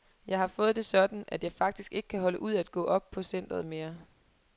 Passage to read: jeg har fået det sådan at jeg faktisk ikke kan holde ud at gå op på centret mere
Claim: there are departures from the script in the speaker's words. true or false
false